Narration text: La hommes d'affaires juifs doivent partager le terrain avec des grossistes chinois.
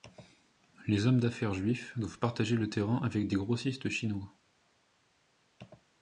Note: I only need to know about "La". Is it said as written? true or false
false